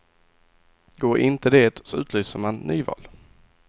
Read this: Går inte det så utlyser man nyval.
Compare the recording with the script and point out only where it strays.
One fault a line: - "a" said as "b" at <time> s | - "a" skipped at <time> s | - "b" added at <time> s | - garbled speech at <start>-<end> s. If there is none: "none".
none